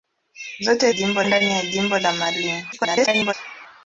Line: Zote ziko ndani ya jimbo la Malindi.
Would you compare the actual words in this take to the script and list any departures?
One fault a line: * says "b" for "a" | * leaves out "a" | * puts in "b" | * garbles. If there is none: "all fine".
* says "jimbo" for "ziko"
* garbles